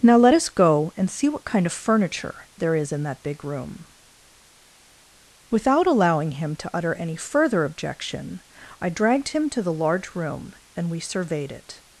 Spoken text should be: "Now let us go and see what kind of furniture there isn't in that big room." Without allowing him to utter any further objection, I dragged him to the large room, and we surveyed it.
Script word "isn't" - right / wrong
wrong